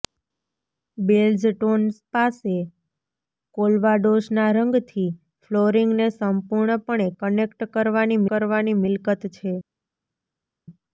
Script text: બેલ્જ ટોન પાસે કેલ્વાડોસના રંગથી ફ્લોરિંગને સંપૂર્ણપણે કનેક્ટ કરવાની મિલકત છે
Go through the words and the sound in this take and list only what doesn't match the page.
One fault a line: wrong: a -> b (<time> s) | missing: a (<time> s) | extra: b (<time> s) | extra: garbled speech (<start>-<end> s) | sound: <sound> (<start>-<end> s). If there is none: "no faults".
extra: કરવાની (8.3 s)